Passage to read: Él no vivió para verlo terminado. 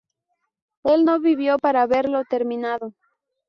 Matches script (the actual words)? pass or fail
pass